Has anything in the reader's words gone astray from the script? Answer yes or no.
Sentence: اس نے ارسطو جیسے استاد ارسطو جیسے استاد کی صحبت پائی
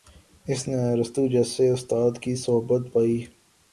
yes